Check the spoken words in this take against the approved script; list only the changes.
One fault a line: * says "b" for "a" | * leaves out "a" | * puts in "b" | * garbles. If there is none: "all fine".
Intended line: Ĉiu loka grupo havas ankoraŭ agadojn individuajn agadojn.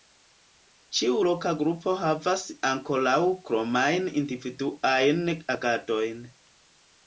* says "kromajn" for "agadojn"